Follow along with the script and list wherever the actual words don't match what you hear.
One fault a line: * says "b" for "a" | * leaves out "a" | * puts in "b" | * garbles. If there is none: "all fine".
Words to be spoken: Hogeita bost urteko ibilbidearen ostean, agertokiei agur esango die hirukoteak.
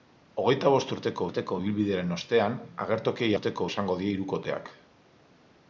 * puts in "urteko"
* says "urteko" for "agur"